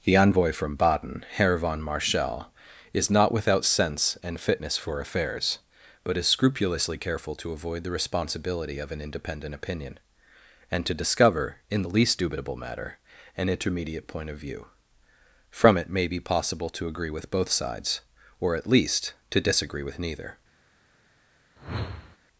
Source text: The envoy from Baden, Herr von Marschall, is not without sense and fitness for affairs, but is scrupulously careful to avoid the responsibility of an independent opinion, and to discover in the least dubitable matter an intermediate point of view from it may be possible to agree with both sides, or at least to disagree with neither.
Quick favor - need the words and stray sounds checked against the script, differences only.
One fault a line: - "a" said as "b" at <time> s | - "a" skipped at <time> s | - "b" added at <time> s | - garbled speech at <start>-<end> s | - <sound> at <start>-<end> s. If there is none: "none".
- whoosh at 21.6-22.2 s